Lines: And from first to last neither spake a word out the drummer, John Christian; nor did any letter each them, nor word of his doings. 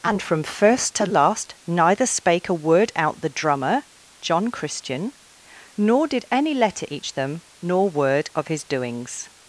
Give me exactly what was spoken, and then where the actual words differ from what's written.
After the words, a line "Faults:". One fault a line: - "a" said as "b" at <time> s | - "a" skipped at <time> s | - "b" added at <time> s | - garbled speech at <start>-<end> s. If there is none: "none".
And from first to last neither spake a word out the drummer, John Christian; nor did any letter each them, nor word of his doings.
Faults:
none